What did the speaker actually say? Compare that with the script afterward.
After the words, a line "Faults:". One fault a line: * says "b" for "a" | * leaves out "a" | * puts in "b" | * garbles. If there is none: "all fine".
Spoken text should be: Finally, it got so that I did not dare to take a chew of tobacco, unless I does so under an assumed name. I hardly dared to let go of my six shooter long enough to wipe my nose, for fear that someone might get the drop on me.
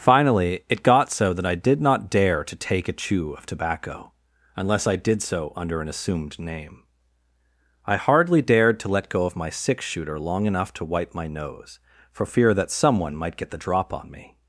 Finally, it got so that I did not dare to take a chew of tobacco, unless I did so under an assumed name. I hardly dared to let go of my six shooter long enough to wipe my nose, for fear that someone might get the drop on me.
Faults:
* says "did" for "does"